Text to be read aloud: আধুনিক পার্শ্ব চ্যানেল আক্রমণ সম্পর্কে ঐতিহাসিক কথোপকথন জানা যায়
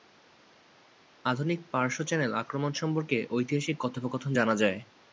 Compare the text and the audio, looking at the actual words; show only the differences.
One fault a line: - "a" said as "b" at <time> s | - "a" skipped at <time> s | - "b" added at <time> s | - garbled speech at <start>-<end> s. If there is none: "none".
none